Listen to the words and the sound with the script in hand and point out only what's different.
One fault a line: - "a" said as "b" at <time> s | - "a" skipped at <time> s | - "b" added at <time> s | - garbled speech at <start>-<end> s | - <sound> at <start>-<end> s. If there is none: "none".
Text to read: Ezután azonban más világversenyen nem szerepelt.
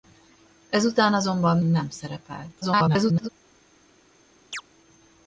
- "más világversenyen" skipped at 1.6 s
- garbled speech at 2.6-3.3 s
- chirp at 4.5-4.6 s